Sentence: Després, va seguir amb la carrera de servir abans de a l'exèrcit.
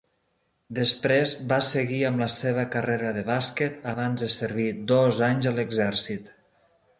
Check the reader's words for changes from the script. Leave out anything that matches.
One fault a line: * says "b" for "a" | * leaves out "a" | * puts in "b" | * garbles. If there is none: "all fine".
* puts in "seva"
* says "bàsquet" for "servir"
* puts in "servir dos anys"